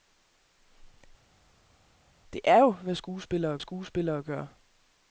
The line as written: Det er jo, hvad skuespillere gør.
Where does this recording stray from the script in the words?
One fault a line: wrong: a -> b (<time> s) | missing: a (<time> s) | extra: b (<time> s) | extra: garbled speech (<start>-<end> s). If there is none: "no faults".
extra: skuespillere (3.6 s)